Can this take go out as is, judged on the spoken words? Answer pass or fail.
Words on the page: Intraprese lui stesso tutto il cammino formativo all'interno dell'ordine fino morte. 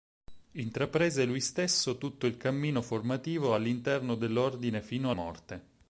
pass